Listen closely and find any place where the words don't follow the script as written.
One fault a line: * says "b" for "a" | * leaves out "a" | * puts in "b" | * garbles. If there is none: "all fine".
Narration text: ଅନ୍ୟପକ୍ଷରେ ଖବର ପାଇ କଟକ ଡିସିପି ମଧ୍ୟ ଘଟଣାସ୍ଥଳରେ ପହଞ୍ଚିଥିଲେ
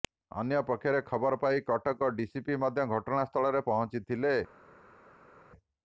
all fine